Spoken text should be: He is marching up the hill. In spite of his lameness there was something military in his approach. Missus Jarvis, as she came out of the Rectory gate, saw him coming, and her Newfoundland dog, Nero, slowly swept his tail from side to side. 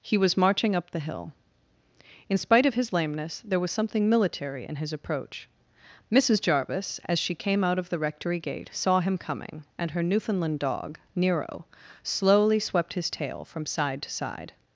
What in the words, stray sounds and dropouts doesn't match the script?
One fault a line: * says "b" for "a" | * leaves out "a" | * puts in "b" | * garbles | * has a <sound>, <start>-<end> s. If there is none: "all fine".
* says "was" for "is"